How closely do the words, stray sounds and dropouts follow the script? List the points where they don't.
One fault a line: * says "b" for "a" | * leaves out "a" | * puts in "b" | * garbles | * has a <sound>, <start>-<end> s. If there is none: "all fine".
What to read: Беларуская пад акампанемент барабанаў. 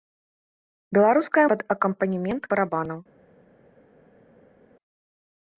all fine